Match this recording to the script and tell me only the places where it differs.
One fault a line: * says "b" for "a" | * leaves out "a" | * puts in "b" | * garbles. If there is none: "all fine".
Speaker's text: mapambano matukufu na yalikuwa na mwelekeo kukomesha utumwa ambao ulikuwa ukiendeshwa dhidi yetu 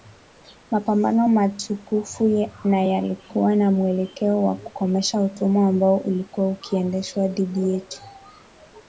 * puts in "wa"